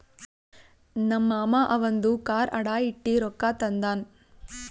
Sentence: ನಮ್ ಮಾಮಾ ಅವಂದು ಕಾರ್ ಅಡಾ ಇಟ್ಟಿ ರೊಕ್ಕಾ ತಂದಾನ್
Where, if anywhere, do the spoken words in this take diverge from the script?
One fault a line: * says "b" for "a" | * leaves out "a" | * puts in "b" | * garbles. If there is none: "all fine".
all fine